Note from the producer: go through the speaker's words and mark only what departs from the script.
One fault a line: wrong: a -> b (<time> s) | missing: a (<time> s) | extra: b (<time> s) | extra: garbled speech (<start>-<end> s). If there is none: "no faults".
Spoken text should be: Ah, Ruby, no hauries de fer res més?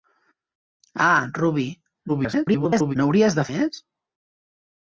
extra: garbled speech (2.1-3.0 s)
missing: fer res (3.5 s)